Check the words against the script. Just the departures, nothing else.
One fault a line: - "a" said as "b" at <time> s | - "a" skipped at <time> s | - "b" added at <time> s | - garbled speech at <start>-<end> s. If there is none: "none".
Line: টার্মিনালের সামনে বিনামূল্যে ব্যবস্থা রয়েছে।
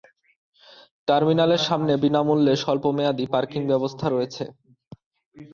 - "স্বল্পমেয়াদী পার্কিং" added at 2.6 s